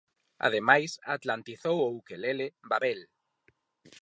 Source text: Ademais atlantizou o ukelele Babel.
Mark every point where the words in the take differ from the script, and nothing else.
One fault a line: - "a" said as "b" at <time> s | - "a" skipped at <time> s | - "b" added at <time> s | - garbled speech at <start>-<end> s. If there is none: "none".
none